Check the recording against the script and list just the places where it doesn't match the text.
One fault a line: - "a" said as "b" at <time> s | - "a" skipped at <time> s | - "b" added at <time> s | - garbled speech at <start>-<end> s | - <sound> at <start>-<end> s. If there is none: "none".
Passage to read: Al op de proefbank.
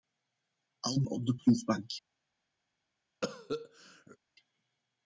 - cough at 3.2-4.2 s